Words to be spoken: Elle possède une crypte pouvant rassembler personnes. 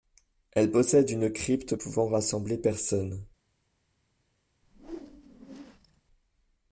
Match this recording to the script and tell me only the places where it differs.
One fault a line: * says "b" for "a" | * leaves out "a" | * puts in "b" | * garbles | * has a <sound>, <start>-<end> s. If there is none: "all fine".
* has a whoosh, 4.6-6.0 s